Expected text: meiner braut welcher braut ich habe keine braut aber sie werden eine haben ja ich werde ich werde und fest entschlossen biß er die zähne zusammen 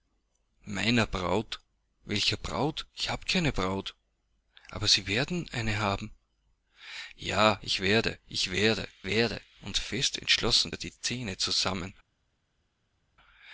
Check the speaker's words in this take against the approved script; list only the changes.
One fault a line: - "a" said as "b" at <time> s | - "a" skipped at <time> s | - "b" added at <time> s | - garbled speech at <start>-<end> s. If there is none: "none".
- "werde" added at 9.1 s
- "biß" skipped at 10.7 s